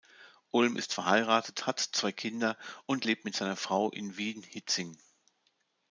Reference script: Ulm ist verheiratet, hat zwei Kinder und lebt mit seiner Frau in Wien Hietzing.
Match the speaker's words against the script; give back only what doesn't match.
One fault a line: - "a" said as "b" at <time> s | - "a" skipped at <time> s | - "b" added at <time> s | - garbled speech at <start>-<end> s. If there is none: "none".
none